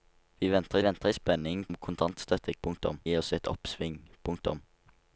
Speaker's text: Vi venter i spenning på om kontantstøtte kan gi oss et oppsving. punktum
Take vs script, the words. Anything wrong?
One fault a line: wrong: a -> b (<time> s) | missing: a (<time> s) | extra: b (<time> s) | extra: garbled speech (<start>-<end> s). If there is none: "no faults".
extra: venter (0.8 s)
missing: på (1.6 s)
wrong: kan -> punktum (2.6 s)